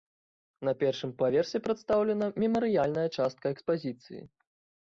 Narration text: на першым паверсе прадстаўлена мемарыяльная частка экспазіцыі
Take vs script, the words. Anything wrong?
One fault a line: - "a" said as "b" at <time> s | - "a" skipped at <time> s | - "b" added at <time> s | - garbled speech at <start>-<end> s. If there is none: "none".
none